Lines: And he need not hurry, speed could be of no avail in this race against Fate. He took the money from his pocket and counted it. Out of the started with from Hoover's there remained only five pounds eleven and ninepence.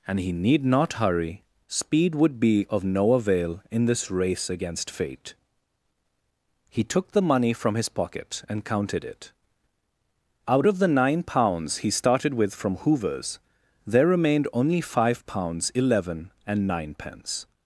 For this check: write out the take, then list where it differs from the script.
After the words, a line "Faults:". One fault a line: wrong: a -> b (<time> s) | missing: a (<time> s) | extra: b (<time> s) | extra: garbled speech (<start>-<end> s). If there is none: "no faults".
And he need not hurry, speed would be of no avail in this race against Fate. He took the money from his pocket and counted it. Out of the nine pounds he started with from Hoover's there remained only five pounds eleven and ninepence.
Faults:
wrong: could -> would (2.1 s)
extra: nine pounds he (10.9 s)